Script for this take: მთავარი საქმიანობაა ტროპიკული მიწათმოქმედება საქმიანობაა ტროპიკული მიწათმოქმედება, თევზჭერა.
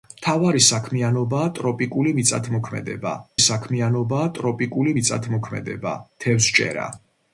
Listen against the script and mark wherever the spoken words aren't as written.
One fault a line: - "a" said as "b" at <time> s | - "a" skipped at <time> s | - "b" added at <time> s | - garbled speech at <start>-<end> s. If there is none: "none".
none